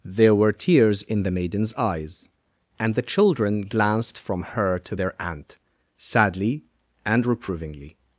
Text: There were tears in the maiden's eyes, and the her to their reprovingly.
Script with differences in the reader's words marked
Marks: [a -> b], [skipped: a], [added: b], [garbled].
There were tears in the maiden's eyes, and the [added: children glanced from] her to their [added: aunt sadly and] reprovingly.